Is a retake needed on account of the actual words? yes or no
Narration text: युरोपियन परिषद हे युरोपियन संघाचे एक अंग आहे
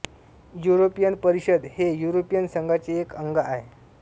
no